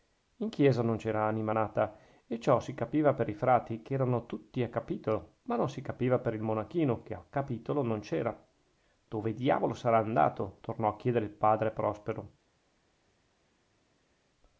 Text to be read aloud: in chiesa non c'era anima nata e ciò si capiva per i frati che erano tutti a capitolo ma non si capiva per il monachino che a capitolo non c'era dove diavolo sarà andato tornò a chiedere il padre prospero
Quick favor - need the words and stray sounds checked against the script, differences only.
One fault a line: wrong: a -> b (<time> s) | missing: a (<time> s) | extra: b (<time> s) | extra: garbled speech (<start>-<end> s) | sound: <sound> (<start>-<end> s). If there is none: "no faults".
no faults